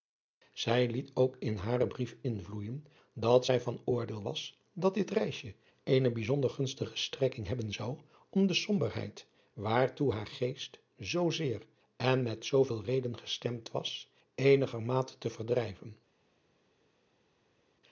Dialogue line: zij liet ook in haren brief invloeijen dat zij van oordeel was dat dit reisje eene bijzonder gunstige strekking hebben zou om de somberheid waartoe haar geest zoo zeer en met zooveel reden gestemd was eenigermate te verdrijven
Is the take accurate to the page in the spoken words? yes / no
yes